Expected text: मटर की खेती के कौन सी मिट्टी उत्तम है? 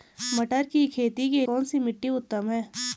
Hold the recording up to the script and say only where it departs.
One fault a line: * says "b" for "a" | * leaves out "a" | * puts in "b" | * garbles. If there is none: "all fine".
all fine